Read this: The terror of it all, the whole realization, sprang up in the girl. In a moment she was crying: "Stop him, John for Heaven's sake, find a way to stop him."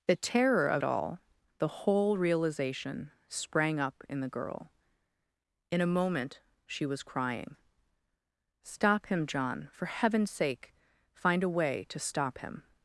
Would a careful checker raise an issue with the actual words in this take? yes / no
yes